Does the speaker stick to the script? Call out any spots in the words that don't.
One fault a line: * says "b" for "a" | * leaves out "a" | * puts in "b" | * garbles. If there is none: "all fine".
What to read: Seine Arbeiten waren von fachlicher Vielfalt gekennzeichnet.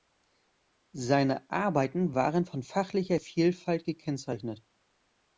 all fine